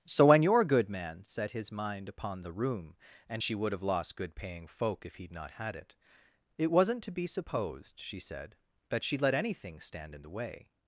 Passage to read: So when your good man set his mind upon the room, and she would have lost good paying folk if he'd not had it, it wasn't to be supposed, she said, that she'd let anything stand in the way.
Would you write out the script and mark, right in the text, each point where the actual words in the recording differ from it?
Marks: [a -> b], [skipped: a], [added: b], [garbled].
So when your good man set his mind upon the room, and she would have lost good paying folk if he'd not had it, it wasn't to be supposed, she said, that she'd let anything stand in the way.